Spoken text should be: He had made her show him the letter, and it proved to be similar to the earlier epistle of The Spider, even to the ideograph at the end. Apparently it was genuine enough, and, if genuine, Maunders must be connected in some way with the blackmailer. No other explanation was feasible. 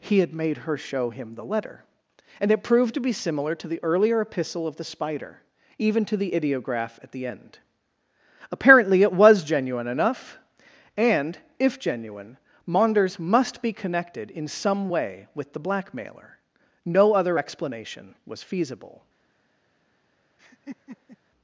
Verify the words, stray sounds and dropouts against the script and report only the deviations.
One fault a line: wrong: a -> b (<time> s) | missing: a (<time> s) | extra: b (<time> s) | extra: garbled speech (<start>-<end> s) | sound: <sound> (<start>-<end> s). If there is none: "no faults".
sound: laugh (20.4-21.2 s)